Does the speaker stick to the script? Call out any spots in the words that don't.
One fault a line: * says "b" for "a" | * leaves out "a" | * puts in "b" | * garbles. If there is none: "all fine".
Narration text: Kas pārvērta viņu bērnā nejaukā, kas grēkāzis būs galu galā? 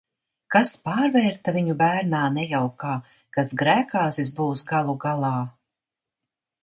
all fine